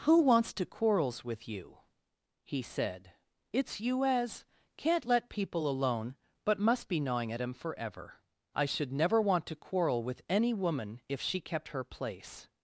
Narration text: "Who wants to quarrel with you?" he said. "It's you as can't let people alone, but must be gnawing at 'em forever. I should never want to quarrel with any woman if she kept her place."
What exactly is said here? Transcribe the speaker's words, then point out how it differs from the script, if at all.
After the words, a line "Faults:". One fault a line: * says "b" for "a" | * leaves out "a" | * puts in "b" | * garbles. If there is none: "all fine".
"Who wants to quarrels with you?" he said. "It's you as can't let people alone, but must be gnawing at 'em forever. I should never want to quarrel with any woman if she kept her place."
Faults:
* says "quarrels" for "quarrel"